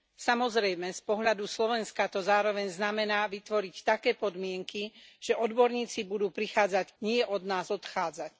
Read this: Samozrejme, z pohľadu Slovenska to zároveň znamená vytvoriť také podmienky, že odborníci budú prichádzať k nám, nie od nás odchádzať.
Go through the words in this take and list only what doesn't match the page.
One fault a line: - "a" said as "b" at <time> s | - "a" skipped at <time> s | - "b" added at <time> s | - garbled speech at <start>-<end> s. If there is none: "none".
- "k nám" skipped at 6.9 s